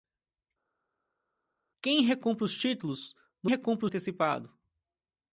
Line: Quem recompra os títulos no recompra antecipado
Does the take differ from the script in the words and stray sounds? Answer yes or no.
no